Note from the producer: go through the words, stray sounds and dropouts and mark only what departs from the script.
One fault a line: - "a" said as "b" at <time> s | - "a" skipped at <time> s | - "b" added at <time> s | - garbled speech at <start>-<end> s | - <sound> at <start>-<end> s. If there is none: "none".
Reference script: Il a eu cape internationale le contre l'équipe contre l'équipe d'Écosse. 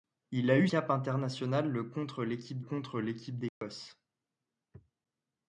- dropout at 3.5-3.6 s